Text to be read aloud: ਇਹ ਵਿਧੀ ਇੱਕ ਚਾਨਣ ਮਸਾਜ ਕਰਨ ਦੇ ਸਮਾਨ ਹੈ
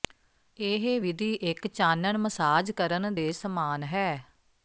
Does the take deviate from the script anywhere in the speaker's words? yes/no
no